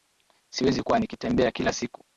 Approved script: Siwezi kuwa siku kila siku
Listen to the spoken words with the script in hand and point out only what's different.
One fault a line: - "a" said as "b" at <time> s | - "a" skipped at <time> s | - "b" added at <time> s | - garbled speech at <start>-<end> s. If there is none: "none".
- "siku" said as "nikitembea" at 1.0 s